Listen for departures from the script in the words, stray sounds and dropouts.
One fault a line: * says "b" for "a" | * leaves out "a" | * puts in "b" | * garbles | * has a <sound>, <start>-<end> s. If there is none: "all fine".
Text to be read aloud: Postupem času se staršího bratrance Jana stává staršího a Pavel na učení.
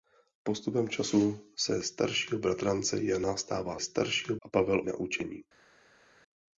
all fine